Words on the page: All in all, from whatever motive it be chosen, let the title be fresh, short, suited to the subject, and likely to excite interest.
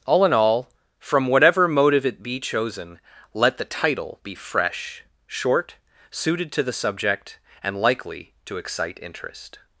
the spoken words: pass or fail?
pass